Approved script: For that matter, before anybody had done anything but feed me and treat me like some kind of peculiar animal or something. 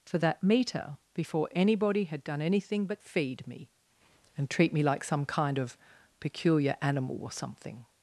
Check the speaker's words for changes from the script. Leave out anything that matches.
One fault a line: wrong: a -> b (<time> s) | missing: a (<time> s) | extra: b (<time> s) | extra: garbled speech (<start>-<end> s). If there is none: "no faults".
wrong: matter -> meter (0.4 s)